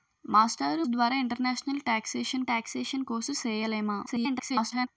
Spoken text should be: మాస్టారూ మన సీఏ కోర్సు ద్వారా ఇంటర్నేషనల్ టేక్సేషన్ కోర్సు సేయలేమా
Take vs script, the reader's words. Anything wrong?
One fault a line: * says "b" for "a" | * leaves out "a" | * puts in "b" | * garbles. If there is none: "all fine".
* leaves out "మన సీఏ కోర్సు"
* puts in "టేక్సేషన్"
* garbles